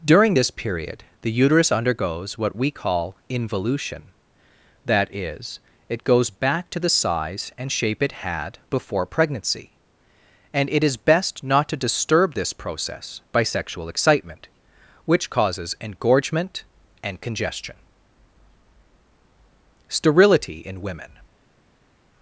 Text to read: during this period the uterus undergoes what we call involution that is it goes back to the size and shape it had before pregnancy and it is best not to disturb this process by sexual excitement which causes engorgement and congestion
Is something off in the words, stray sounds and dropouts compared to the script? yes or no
yes